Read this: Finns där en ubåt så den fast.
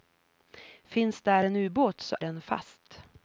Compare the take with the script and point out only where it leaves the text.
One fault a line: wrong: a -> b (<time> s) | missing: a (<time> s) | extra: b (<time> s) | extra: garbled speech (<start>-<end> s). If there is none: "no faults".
no faults